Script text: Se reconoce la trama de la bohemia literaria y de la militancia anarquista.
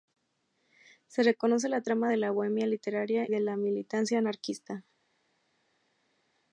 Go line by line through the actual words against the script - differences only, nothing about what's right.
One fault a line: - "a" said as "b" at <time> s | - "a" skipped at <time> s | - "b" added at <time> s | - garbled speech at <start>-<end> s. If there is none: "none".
- "y" skipped at 3.3 s